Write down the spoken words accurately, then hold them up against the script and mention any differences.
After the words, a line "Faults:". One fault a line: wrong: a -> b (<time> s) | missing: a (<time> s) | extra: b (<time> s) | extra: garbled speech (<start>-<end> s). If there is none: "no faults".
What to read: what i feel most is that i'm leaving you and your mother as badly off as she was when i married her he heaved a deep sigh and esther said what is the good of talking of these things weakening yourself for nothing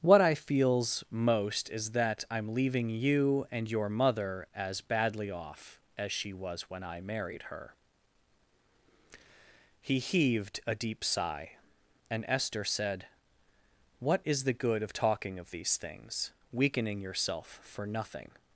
what i feels most is that i'm leaving you and your mother as badly off as she was when i married her he heaved a deep sigh and esther said what is the good of talking of these things weakening yourself for nothing
Faults:
wrong: feel -> feels (0.3 s)